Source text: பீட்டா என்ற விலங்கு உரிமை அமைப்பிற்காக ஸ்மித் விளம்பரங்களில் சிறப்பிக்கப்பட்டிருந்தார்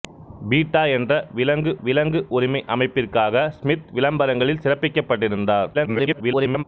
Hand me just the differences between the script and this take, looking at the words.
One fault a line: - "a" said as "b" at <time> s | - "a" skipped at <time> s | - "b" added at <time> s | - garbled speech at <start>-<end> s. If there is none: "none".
- "விலங்கு" added at 1.8 s
- garbled speech at 5.7-6.6 s